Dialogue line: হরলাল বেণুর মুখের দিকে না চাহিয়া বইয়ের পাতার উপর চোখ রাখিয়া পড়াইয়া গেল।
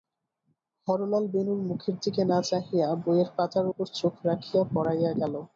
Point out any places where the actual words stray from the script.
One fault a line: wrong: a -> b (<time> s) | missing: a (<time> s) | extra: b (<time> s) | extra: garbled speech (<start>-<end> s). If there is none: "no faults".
no faults